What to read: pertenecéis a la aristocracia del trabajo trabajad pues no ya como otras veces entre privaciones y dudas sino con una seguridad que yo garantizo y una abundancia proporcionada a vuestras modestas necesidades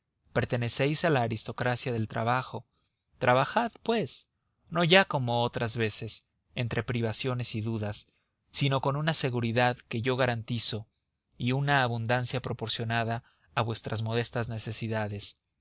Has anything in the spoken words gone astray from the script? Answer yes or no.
no